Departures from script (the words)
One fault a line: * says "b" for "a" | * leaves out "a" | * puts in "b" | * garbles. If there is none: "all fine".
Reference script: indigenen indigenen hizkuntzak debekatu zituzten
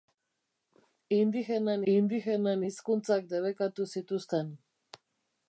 all fine